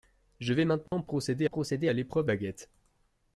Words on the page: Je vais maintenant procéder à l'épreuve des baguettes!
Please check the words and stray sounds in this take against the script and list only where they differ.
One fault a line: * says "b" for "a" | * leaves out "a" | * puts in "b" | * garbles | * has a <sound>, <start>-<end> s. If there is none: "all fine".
* has a dropout, 0.9-0.9 s
* puts in "procéder"
* leaves out "des"